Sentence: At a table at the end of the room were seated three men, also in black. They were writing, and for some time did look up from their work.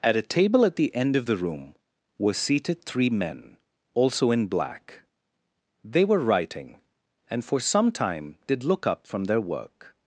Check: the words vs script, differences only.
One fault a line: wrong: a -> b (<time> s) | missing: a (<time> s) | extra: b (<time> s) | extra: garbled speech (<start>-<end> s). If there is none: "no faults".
no faults